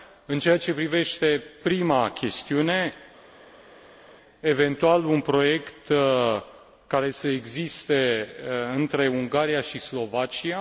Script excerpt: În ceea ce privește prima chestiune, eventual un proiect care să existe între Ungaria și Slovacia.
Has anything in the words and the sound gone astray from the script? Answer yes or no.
no